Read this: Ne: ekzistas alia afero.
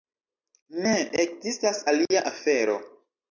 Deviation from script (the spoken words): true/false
false